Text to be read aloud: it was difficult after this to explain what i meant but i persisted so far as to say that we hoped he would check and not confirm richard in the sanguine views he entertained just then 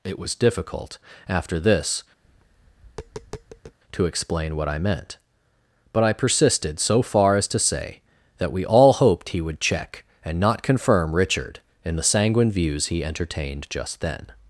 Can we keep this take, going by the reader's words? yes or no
no